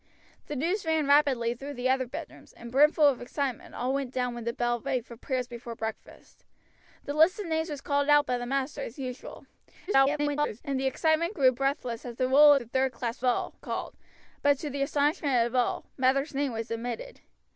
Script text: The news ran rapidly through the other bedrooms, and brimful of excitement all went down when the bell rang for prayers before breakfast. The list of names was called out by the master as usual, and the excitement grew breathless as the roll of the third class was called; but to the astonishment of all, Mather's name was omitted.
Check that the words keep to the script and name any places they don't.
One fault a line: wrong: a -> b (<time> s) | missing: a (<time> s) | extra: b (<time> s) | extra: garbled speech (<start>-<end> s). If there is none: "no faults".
extra: garbled speech (9.9-10.6 s)
missing: of (12.5 s)
wrong: was -> all (13.2 s)